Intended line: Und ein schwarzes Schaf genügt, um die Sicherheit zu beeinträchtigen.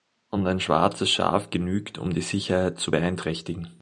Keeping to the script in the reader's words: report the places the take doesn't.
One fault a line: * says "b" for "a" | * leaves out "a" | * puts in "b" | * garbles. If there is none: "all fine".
all fine